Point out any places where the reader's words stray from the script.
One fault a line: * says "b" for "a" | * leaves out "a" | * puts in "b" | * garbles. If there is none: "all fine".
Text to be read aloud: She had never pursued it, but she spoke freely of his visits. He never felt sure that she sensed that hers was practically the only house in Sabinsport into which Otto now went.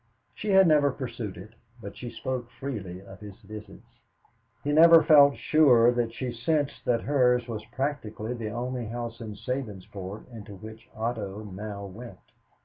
all fine